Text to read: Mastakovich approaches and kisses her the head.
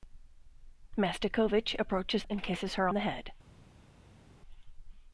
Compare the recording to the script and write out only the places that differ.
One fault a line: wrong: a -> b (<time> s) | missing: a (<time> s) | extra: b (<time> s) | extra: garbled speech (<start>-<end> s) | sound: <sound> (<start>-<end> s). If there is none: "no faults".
no faults